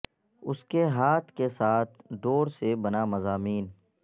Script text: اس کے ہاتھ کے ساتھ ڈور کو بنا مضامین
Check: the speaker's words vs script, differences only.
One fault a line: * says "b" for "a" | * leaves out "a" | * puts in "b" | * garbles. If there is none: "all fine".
* says "سے" for "کو"